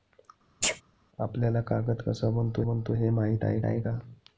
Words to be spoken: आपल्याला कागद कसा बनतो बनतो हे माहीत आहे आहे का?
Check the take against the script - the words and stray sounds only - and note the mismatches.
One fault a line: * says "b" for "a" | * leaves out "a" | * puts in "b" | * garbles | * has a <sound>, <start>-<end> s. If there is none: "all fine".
* has a sneeze, 0.6-0.8 s